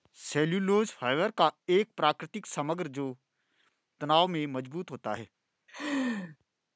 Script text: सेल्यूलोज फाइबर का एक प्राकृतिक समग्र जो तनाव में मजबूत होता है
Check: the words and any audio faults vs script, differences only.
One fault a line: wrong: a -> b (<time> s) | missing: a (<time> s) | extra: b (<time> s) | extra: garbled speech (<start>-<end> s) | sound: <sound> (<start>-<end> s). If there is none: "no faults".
sound: laugh (5.7-6.4 s)